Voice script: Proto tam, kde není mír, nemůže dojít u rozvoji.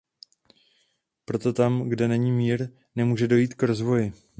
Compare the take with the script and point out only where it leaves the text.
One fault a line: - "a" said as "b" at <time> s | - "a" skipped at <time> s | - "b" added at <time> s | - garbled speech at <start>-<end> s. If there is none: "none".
- "u" said as "k" at 3.5 s